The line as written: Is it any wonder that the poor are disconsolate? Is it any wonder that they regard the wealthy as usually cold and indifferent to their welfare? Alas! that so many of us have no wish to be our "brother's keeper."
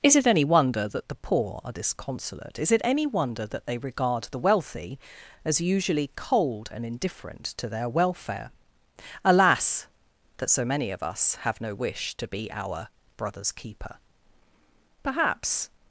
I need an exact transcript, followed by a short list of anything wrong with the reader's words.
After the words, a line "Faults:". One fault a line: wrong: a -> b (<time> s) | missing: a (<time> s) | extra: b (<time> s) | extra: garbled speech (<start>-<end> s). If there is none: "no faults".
Is it any wonder that the poor are disconsolate? Is it any wonder that they regard the wealthy as usually cold and indifferent to their welfare? Alas! that so many of us have no wish to be our "brother's keeper." Perhaps
Faults:
extra: Perhaps (15.0 s)